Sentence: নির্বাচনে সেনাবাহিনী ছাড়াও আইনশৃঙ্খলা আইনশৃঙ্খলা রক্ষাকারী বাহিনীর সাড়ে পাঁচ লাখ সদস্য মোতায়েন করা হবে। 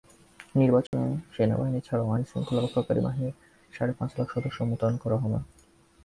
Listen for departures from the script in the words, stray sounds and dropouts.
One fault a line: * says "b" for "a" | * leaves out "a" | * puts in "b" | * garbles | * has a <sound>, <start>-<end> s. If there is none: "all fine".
* has a dropout, 0.9-0.9 s
* leaves out "আইনশৃঙ্খলা"